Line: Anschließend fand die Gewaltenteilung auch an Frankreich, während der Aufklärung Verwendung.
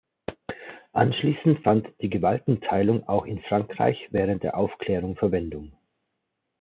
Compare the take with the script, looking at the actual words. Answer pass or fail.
fail